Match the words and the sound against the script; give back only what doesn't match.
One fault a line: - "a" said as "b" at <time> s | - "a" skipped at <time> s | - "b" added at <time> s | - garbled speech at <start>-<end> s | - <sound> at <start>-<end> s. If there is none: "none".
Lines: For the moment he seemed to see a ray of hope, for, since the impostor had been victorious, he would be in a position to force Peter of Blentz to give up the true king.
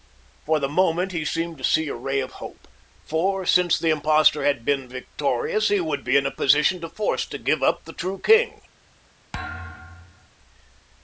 - "Peter of Blentz" skipped at 7.2 s
- thud at 9.3-10.3 s